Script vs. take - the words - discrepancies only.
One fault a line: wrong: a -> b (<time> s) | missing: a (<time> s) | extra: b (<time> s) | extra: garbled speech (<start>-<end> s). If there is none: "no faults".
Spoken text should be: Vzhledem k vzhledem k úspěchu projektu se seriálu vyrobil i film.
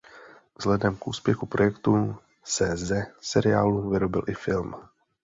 missing: vzhledem k (1.1 s)
extra: ze (2.8 s)